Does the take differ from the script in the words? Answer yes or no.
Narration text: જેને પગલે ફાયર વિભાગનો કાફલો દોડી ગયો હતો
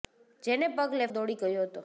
yes